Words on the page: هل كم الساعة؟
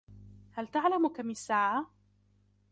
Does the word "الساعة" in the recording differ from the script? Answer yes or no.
no